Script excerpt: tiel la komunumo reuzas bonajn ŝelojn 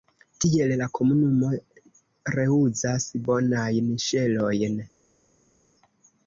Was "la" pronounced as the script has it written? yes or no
yes